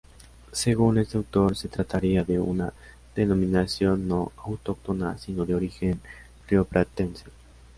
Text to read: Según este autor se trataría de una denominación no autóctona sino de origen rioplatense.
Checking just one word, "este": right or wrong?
right